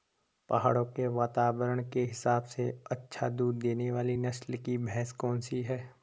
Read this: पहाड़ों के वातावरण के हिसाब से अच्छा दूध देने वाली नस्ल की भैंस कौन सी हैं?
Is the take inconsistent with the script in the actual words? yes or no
no